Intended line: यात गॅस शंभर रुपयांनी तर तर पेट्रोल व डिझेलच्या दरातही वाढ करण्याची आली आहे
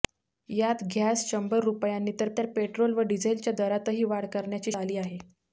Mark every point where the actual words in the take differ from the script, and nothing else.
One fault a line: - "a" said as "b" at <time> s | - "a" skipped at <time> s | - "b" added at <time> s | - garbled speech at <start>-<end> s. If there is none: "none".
none